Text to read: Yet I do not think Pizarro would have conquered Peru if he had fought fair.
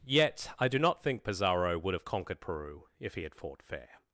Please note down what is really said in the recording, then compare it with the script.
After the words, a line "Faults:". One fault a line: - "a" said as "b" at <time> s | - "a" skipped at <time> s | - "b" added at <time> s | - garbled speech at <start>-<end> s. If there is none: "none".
Yet I do not think Pizarro would have conquered Peru if he had fought fair.
Faults:
none